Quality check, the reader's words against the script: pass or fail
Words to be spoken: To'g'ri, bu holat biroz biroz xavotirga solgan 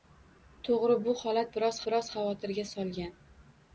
pass